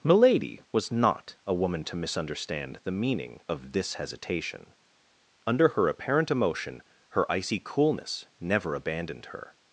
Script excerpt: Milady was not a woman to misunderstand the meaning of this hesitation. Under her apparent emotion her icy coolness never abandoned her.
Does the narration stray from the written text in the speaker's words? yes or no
no